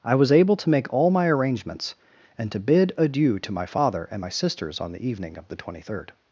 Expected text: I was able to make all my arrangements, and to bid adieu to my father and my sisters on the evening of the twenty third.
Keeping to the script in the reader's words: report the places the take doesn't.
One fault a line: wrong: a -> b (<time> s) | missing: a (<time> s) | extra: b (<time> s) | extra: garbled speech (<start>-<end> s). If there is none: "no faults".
no faults